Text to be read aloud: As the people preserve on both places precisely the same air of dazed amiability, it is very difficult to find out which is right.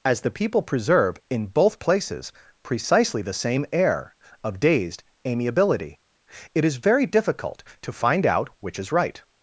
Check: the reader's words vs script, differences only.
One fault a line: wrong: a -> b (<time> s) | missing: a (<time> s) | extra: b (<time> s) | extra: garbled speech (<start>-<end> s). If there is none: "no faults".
wrong: on -> in (1.3 s)